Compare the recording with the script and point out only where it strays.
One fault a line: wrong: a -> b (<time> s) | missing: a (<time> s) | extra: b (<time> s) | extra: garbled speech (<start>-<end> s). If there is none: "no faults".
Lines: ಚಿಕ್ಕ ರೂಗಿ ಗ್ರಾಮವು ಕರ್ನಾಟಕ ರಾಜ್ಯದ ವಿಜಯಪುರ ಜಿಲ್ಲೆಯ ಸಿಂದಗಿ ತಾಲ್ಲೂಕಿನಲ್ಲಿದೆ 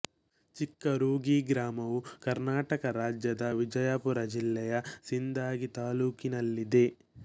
no faults